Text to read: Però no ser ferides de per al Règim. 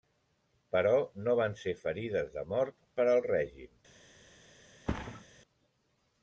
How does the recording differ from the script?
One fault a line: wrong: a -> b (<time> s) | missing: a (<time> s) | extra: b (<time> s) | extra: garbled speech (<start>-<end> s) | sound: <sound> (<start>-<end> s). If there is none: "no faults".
extra: van (1.4 s)
extra: mort (2.5 s)
sound: thud (4.9-5.3 s)